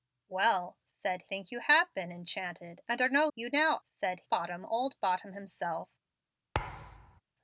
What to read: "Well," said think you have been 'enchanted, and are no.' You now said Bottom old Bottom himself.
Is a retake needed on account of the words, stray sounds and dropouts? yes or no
yes